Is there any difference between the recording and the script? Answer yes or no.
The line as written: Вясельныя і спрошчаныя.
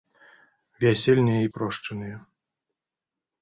no